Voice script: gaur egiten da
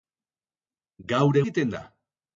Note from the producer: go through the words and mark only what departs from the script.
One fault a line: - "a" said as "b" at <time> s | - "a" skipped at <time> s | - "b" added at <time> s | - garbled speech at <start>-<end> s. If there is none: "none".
none